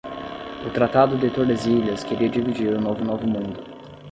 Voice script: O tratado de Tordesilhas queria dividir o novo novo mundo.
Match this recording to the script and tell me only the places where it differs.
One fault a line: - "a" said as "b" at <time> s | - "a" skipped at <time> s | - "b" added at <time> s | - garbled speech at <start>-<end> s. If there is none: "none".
none